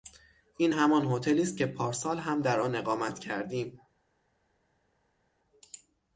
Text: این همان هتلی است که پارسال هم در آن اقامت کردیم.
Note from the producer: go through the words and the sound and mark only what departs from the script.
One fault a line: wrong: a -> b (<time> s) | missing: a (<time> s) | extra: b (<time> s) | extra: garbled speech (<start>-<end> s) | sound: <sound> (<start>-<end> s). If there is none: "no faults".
no faults